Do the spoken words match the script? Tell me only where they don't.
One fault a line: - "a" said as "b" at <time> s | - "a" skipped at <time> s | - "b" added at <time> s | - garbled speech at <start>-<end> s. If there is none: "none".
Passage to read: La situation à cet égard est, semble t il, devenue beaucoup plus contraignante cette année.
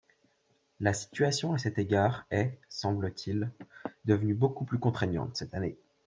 none